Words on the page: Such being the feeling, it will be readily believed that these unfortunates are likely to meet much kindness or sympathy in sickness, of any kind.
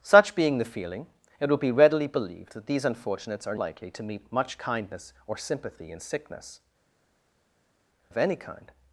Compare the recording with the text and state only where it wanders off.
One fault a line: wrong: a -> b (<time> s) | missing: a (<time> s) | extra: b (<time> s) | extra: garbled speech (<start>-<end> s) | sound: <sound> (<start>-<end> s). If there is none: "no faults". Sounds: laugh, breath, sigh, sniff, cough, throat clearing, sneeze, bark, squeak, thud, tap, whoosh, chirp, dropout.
no faults